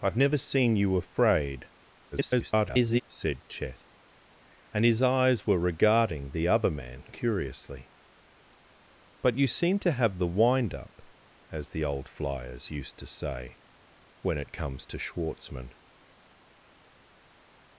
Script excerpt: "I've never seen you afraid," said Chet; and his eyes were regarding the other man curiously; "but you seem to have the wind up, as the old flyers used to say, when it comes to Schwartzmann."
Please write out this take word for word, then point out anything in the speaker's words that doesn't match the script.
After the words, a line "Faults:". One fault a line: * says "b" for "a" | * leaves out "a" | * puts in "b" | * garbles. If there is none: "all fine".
"I've never seen you afraid," [garbled] said Chet; and his eyes were regarding the other man curiously; "but you seem to have the wind up, as the old flyers used to say, when it comes to Schwartzmann."
Faults:
* garbles